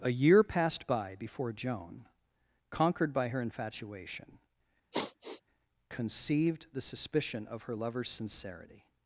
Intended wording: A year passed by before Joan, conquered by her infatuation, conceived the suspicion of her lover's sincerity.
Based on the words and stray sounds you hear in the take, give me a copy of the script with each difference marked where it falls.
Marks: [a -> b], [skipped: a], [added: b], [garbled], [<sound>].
A year passed by before Joan, conquered by her infatuation, [sigh] conceived the suspicion of her lover's sincerity.